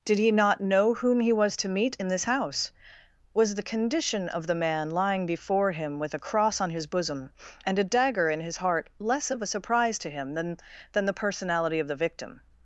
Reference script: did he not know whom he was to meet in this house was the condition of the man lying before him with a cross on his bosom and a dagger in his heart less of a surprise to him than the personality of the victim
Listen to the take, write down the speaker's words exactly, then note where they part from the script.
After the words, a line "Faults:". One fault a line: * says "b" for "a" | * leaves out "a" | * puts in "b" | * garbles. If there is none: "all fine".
did he not know whom he was to meet in this house was the condition of the man lying before him with a cross on his bosom and a dagger in his heart less of a surprise to him than than the personality of the victim
Faults:
* puts in "than"